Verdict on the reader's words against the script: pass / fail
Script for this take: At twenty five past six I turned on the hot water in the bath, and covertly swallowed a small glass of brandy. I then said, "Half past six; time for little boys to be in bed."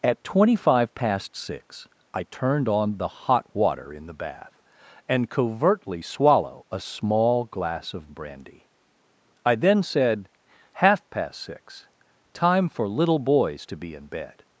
fail